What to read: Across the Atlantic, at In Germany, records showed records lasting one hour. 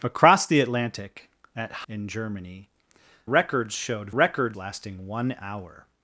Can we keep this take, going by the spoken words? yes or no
yes